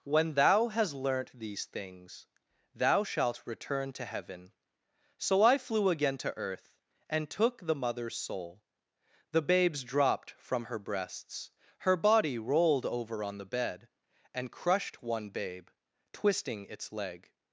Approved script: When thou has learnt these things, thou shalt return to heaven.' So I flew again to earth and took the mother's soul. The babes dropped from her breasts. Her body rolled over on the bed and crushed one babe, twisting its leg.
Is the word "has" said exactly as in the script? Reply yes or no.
no